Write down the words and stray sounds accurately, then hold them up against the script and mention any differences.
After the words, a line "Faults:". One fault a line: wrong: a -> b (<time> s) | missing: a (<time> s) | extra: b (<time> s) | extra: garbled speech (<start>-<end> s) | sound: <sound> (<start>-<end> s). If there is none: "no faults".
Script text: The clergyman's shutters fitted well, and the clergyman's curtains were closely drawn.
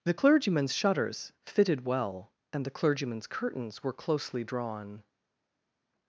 The clergyman's shutters fitted well, and the clergyman's curtains were closely drawn.
Faults:
no faults